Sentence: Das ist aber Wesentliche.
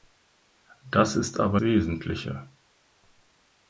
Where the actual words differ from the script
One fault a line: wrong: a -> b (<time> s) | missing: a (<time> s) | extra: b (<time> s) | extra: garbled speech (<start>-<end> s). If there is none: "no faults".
no faults